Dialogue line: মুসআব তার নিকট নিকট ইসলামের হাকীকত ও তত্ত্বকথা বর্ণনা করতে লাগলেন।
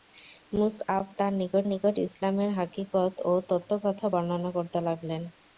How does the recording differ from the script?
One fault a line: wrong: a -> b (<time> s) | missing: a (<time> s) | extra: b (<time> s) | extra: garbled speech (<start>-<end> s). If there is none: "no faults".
no faults